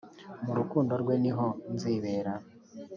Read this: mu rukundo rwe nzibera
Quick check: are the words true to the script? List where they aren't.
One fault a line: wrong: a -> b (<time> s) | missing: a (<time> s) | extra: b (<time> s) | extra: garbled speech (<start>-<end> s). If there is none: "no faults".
extra: niho (1.2 s)